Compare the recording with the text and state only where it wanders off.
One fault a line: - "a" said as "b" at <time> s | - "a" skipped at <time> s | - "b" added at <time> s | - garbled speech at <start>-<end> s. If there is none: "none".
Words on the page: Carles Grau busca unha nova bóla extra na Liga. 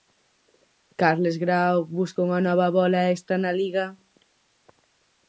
none